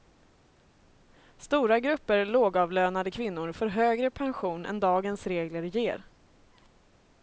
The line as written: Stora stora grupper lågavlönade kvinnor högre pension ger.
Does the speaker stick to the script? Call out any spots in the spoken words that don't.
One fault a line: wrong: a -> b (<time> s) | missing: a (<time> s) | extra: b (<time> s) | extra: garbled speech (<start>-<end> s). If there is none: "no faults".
missing: stora (1.8 s)
extra: får (3.5 s)
extra: än dagens regler (4.6 s)